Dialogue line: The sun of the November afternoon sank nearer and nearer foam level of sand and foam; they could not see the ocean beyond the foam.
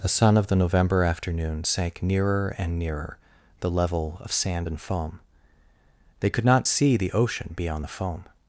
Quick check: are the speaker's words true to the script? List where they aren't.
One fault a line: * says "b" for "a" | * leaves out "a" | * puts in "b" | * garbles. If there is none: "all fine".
* says "the" for "foam"